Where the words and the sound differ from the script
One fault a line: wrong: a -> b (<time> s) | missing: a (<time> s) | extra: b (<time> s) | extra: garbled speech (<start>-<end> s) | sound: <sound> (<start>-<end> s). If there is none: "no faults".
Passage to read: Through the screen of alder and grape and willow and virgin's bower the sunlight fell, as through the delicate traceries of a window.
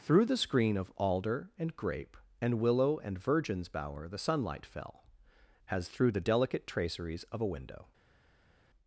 no faults